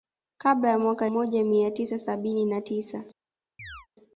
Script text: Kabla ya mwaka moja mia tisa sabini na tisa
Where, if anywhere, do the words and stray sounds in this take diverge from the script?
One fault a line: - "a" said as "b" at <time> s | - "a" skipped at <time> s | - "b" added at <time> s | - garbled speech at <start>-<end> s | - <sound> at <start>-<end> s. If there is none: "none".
- chirp at 3.6-3.9 s